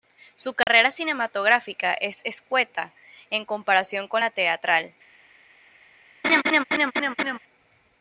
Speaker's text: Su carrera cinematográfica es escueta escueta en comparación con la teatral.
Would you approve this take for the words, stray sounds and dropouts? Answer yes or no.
no